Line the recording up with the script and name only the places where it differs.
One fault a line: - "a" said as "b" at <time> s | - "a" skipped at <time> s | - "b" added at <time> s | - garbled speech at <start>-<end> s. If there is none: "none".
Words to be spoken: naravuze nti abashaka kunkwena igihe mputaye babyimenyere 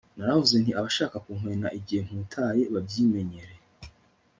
none